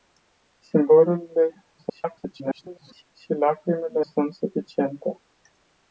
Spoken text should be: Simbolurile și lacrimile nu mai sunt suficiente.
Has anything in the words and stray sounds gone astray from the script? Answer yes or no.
yes